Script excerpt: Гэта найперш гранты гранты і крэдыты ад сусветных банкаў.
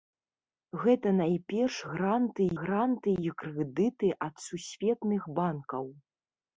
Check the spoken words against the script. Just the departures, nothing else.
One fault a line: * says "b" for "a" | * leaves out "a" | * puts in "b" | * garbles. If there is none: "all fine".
all fine